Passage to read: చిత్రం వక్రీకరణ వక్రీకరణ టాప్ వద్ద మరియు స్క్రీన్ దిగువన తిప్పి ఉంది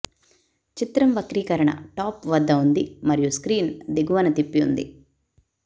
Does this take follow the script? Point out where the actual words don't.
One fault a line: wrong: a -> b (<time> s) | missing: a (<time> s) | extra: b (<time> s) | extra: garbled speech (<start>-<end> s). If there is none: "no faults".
missing: వక్రీకరణ (1.7 s)
extra: ఉంది (2.6 s)